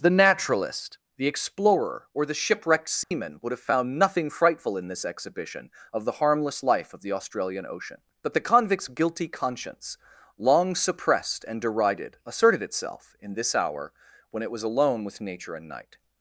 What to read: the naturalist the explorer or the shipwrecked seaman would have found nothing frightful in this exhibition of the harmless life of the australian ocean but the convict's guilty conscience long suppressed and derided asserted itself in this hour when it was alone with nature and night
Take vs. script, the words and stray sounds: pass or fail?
fail